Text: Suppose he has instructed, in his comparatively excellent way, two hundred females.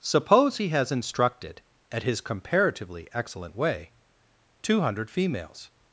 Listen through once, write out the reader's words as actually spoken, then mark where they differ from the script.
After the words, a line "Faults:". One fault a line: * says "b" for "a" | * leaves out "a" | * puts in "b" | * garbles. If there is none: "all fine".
Suppose he has instructed, at his comparatively excellent way, two hundred females.
Faults:
* says "at" for "in"